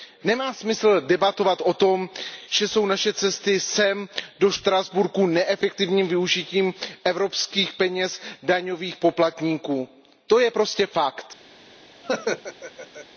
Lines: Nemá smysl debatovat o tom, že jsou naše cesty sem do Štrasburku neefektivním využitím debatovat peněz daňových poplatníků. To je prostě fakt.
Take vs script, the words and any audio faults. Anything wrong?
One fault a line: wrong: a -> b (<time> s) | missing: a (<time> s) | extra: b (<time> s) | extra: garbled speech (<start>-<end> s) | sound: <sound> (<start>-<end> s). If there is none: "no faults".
wrong: debatovat -> evropských (7.0 s)
sound: laugh (12.0-13.1 s)